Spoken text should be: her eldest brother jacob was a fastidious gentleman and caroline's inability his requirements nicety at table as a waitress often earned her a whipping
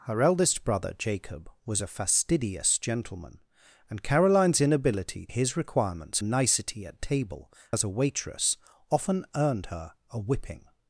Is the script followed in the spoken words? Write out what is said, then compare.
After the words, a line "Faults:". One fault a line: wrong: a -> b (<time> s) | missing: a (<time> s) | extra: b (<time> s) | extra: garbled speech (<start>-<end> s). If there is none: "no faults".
her eldest brother jacob was a fastidious gentleman and caroline's inability his requirements nicety at table as a waitress often earned her a whipping
Faults:
no faults